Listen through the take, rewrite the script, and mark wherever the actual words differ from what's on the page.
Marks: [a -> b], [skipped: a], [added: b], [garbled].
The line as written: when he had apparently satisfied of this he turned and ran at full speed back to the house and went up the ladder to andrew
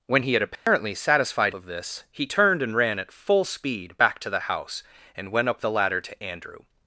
when he had apparently satisfied of this he turned and ran at full speed back to the house and went up the ladder to andrew